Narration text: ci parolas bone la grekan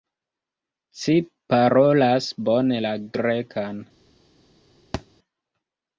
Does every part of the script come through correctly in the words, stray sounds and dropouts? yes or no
no